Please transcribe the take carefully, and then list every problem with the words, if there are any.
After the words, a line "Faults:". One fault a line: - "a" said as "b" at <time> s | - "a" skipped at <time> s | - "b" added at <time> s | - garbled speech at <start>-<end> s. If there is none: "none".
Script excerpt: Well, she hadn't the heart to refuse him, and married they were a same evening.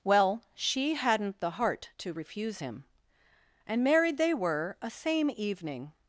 Well, she hadn't the heart to refuse him, and married they were a same evening.
Faults:
none